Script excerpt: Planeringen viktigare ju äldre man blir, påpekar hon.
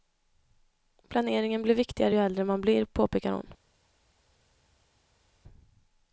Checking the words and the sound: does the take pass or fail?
fail